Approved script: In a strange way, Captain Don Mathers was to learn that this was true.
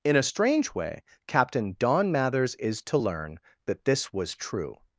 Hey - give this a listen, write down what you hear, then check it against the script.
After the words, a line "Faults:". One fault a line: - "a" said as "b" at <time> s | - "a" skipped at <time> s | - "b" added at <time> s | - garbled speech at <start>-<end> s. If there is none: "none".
In a strange way, Captain Don Mathers is to learn that this was true.
Faults:
- "was" said as "is" at 2.5 s